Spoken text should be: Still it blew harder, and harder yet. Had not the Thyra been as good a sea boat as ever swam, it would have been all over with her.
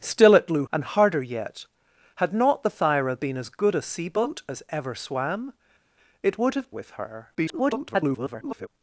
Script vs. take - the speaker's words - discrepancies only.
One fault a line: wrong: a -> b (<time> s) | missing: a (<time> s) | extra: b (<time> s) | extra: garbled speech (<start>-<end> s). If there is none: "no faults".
missing: harder (0.7 s)
missing: been all over (6.7 s)
extra: garbled speech (7.3-8.7 s)